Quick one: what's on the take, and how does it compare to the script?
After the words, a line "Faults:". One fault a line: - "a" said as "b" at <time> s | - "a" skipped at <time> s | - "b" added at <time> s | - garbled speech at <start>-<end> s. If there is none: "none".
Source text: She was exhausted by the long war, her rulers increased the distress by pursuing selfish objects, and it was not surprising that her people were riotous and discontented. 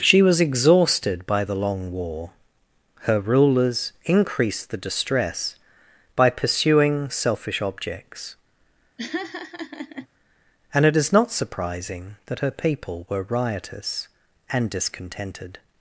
She was exhausted by the long war, her rulers increased the distress by pursuing selfish objects, and it is not surprising that her people were riotous and discontented.
Faults:
- "was" said as "is" at 10.9 s